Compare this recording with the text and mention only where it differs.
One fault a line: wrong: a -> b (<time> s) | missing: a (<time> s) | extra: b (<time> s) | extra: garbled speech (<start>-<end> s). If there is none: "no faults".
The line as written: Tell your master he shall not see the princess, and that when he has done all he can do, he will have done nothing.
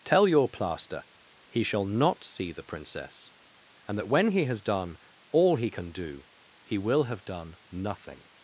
wrong: master -> plaster (0.5 s)